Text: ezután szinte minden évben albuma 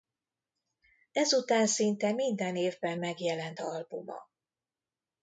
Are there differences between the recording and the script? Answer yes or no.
yes